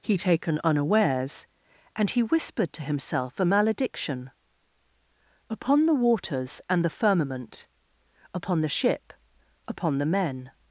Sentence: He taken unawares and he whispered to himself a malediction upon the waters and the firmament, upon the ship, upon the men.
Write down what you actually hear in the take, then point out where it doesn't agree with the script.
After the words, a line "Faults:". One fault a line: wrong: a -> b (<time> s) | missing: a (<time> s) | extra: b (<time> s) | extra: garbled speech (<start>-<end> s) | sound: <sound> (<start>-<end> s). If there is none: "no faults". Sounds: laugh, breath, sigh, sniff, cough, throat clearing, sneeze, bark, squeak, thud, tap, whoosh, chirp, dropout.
He taken unawares and he whispered to himself a malediction upon the waters and the firmament, upon the ship, upon the men.
Faults:
no faults